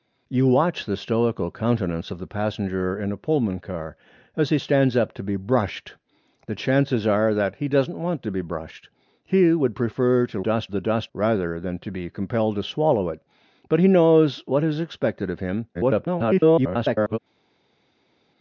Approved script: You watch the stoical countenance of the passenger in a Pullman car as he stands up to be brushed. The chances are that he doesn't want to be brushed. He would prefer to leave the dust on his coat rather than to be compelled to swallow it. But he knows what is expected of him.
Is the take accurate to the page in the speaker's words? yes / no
no